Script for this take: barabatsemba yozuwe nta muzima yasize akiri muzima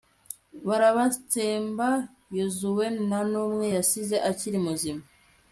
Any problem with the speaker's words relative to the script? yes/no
yes